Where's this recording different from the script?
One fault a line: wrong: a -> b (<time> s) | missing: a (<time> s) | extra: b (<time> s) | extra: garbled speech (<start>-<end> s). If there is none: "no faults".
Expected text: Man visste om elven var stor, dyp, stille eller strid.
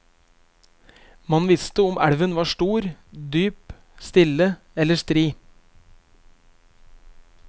no faults